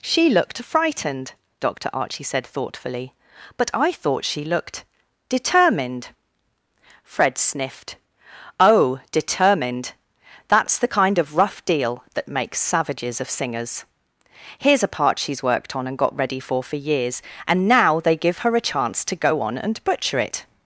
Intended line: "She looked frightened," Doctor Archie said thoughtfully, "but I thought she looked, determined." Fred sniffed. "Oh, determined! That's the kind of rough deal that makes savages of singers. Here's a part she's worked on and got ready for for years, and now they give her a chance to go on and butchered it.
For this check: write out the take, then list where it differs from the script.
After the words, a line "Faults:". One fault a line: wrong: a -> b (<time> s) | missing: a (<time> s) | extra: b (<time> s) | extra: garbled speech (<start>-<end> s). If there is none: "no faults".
"She looked frightened," Doctor Archie said thoughtfully, "but I thought she looked, determined." Fred sniffed. "Oh, determined! That's the kind of rough deal that makes savages of singers. Here's a part she's worked on and got ready for for years, and now they give her a chance to go on and butcher it.
Faults:
wrong: butchered -> butcher (19.8 s)